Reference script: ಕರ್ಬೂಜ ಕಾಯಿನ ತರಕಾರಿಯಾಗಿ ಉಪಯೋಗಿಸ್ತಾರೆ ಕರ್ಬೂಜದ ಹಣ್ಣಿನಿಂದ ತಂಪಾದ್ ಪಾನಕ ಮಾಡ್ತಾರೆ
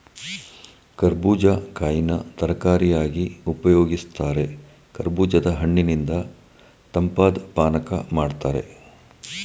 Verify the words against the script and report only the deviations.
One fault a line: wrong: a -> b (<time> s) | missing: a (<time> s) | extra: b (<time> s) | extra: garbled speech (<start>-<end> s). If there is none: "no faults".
no faults